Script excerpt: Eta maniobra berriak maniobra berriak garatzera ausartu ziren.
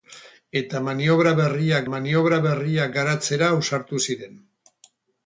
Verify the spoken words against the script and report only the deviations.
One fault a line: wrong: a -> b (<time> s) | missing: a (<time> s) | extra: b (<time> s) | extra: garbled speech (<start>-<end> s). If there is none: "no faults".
no faults